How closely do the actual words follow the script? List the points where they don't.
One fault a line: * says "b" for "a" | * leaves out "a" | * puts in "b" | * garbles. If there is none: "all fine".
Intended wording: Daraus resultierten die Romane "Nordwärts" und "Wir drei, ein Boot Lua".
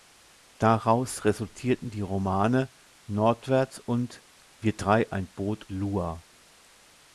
all fine